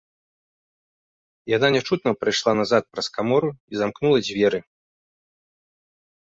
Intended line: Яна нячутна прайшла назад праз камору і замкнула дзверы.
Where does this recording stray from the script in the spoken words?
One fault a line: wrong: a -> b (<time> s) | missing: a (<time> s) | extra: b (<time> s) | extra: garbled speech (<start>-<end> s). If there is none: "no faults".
no faults